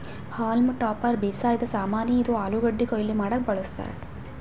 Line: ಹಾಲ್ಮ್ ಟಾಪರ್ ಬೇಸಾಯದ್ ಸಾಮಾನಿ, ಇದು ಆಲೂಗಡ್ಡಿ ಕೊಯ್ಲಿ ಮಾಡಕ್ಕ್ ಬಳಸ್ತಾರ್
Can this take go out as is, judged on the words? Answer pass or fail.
pass